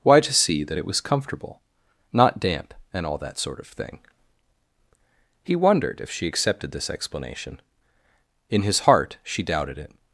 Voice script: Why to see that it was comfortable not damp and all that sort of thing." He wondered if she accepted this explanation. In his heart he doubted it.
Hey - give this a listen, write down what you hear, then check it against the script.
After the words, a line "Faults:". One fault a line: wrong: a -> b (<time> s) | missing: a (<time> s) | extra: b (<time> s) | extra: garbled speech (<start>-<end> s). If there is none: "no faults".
Why to see that it was comfortable not damp and all that sort of thing." He wondered if she accepted this explanation. In his heart she doubted it.
Faults:
wrong: he -> she (9.2 s)